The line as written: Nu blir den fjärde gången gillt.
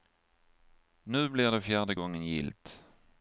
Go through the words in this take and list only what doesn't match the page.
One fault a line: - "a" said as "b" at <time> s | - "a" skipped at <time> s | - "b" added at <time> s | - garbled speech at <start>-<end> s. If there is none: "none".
- "den" said as "det" at 1.5 s